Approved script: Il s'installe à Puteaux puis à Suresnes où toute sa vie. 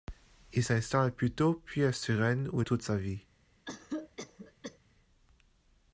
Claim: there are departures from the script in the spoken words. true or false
false